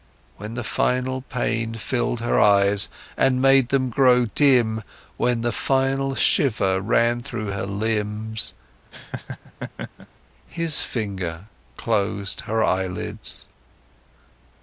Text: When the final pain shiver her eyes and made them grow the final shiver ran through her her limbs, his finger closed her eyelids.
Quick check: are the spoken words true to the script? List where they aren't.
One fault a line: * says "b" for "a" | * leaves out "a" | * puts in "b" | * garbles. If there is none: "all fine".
* says "filled" for "shiver"
* puts in "dim when"
* leaves out "her"